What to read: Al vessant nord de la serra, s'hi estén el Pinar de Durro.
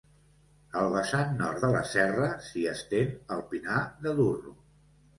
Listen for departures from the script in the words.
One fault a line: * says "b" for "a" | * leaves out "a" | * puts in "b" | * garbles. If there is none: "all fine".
all fine